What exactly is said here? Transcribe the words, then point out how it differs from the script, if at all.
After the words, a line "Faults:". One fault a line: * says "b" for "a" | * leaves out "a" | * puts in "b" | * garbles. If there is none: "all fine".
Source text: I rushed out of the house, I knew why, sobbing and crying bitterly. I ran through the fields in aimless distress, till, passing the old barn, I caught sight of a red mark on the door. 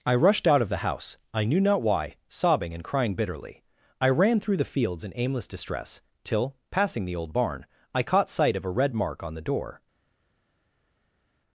I rushed out of the house, I knew not why, sobbing and crying bitterly. I ran through the fields in aimless distress, till, passing the old barn, I caught sight of a red mark on the door.
Faults:
* puts in "not"